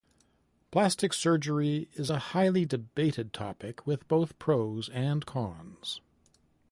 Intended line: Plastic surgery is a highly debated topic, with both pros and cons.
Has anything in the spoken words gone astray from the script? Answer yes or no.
no